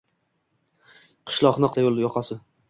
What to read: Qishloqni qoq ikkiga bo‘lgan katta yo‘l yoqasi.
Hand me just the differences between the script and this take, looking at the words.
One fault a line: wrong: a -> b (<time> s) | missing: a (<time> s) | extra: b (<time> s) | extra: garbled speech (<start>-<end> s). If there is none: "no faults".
missing: qoq ikkiga bo‘lgan (1.7 s)